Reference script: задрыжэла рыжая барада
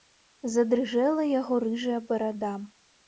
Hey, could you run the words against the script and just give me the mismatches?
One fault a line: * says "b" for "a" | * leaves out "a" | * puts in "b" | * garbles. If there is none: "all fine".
* puts in "яго"